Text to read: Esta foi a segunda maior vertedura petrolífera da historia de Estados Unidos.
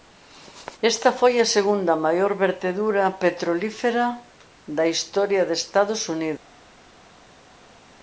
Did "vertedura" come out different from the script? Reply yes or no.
no